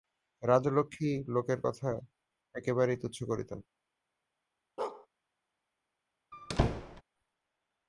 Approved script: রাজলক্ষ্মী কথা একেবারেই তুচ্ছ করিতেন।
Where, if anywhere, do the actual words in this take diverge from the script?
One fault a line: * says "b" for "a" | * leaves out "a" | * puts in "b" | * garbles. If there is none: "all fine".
* puts in "লোকের"